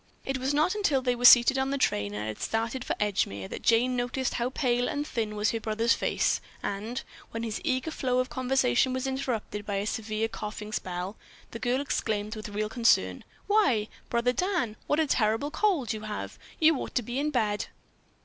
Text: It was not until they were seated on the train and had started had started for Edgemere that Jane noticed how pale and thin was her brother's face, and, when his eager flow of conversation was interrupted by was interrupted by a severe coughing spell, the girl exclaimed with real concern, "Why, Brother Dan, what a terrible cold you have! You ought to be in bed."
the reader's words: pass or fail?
fail